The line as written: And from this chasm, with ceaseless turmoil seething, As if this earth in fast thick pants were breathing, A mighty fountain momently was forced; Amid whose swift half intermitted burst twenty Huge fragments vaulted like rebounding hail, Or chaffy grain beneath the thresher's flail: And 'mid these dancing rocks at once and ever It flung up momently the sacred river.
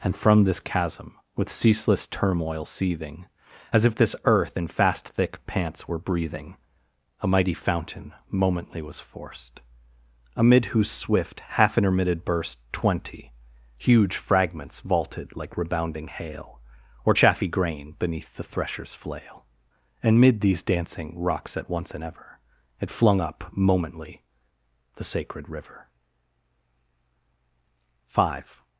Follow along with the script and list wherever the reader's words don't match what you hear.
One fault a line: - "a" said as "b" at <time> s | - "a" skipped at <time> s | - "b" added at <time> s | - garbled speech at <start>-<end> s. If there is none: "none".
- "Five" added at 28.1 s